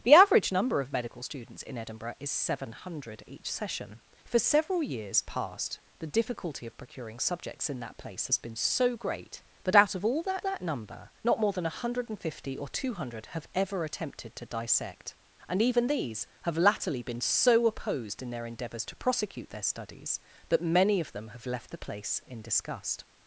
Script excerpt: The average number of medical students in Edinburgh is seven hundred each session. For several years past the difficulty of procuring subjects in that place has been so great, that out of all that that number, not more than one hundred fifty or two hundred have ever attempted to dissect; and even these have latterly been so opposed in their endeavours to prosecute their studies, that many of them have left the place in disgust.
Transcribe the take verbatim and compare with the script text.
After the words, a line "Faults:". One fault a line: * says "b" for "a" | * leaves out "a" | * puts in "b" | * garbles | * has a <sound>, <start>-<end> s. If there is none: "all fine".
The average number of medical students in Edinburgh is seven hundred each session. For several years past the difficulty of procuring subjects in that place has been so great, that out of all that that number, not more than one hundred fifty or two hundred have ever attempted to dissect; and even these have latterly been so opposed in their endeavours to prosecute their studies, that many of them have left the place in disgust.
Faults:
all fine